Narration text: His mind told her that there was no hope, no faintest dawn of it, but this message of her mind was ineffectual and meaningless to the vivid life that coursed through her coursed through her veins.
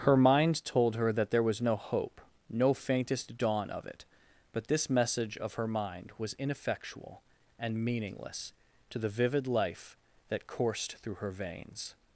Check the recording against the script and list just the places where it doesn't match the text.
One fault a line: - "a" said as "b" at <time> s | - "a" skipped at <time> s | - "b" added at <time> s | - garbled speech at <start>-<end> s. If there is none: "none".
- "His" said as "Her" at 0.0 s
- "coursed through her" skipped at 11.3 s